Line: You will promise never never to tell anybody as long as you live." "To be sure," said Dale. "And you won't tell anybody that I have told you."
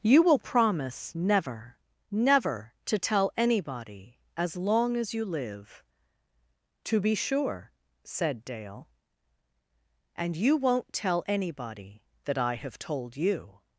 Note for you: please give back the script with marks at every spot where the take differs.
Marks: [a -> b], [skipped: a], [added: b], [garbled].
You will promise never never to tell anybody as long as you live." "To be sure," said Dale. "And you won't tell anybody that I have told you."